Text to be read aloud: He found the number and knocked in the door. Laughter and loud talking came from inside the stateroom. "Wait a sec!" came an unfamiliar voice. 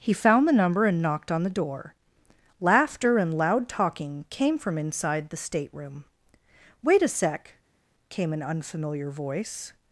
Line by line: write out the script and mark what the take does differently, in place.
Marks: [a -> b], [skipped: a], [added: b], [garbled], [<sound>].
He found the number and knocked [in -> on] the door. Laughter and loud talking came from inside the stateroom. "Wait a sec!" came an unfamiliar voice.